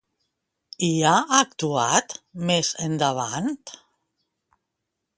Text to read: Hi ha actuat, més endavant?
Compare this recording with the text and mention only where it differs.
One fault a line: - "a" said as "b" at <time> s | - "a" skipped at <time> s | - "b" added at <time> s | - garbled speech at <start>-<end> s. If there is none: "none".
none